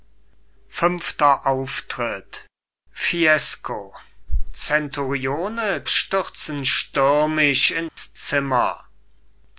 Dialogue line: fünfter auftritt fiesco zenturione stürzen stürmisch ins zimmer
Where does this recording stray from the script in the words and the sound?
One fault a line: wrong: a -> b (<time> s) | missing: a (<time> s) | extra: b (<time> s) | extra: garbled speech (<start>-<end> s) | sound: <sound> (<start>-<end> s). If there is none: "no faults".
sound: dropout (7.9-8.0 s)